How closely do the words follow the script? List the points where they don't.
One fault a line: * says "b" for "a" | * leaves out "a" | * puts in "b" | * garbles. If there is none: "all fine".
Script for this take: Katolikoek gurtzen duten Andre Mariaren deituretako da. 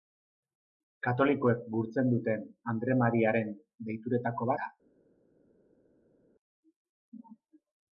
all fine